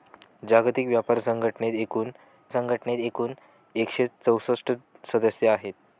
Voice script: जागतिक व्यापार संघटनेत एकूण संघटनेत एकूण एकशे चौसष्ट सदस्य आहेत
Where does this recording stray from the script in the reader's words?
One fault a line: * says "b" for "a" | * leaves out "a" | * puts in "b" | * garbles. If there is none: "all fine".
all fine